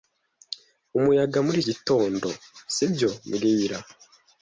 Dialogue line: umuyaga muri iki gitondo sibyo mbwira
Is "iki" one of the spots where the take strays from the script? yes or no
yes